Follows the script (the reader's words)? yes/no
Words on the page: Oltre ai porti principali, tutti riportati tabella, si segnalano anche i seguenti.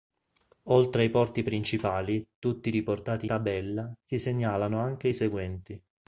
yes